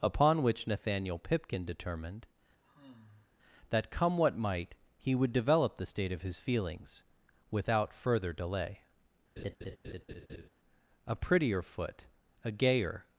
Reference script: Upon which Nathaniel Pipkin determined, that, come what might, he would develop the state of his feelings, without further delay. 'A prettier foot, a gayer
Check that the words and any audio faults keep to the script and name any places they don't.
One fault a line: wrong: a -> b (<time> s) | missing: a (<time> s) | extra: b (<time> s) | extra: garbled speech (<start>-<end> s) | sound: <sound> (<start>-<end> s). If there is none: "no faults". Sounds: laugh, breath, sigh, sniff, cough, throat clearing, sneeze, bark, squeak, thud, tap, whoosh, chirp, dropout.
sound: sigh (2.6-3.3 s)
sound: laugh (9.4-10.5 s)